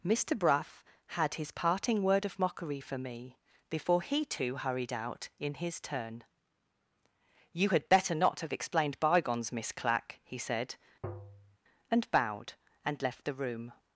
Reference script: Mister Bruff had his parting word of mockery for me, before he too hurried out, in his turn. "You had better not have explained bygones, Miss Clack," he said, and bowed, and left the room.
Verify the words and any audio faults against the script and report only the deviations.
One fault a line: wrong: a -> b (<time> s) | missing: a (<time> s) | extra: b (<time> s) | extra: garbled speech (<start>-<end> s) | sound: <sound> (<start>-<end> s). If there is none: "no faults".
sound: tap (11.0-11.6 s)